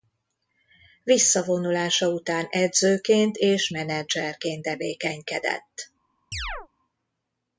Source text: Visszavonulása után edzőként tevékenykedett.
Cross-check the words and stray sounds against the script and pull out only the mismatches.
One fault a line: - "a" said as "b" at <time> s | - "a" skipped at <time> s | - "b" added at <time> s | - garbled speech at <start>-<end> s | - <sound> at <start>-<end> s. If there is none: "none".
- "és menedzserként" added at 3.4 s
- chirp at 6.3-6.7 s